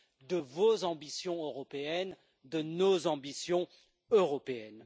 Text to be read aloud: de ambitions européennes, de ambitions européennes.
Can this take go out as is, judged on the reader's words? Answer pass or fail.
fail